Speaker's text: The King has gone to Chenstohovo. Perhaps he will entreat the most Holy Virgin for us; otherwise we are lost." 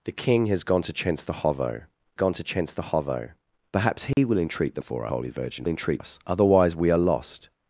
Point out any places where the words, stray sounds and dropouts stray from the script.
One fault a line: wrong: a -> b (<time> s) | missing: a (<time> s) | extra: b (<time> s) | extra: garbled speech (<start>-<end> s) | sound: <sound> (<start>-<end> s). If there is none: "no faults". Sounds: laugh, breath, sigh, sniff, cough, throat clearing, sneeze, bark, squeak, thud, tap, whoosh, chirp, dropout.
extra: gone to Chenstohovo (2.1 s)
sound: dropout (4.1-4.2 s)
wrong: most -> for (4.8 s)
wrong: for -> entreat (5.6 s)